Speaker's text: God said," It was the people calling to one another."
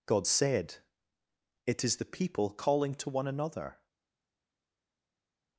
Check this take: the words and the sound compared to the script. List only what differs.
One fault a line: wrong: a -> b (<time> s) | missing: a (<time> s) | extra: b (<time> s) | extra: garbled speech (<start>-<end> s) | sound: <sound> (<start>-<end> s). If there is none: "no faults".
wrong: was -> is (1.8 s)